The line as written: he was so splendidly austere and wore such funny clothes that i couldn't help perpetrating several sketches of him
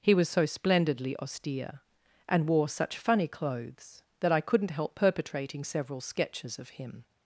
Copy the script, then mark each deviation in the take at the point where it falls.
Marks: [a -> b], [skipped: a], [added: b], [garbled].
he was so splendidly austere and wore such funny clothes that i couldn't help perpetrating several sketches of him